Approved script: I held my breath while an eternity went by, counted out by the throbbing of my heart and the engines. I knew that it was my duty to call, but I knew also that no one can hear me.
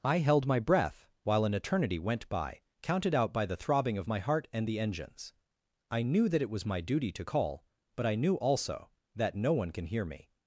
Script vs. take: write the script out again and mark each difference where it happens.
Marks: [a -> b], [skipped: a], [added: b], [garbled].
I held my breath while an eternity went by, counted out by the throbbing of my heart and the engines. I knew that it was my duty to call, but I knew also that no one can hear me.